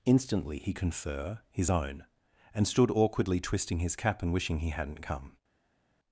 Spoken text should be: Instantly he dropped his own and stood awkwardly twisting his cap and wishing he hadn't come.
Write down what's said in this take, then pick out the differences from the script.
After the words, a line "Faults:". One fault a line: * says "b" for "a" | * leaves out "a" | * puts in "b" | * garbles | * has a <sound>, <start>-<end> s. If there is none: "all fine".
Instantly he confer his own and stood awkwardly twisting his cap and wishing he hadn't come.
Faults:
* says "confer" for "dropped"